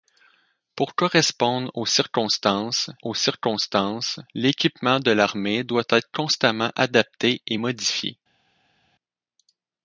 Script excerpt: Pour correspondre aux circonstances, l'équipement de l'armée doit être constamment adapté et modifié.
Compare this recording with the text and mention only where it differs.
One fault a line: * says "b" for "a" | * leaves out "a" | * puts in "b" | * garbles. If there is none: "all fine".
* puts in "aux circonstances"